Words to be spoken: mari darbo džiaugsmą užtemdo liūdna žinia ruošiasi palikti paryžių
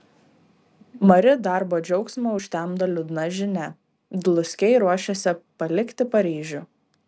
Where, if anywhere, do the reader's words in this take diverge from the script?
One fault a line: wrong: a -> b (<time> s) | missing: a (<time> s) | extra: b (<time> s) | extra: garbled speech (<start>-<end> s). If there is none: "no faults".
extra: dluskiai (4.3 s)